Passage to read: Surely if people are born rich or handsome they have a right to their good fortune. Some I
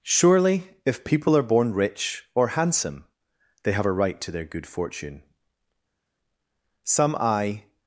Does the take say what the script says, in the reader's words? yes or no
yes